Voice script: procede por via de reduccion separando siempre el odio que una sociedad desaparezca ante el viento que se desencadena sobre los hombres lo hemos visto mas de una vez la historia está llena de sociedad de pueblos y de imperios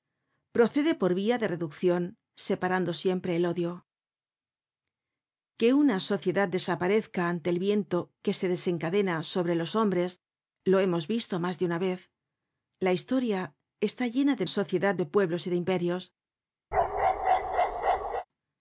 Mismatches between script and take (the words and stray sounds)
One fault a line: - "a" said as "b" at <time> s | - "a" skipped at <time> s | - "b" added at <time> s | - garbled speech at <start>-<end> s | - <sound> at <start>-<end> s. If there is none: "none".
- bark at 16.7-18.3 s